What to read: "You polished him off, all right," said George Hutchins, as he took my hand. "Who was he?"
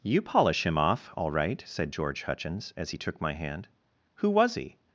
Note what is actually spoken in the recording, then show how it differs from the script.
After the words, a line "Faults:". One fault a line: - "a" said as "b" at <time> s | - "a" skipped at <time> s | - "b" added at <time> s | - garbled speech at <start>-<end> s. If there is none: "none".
"You polish him off, all right," said George Hutchins, as he took my hand. "Who was he?"
Faults:
- "polished" said as "polish" at 0.2 s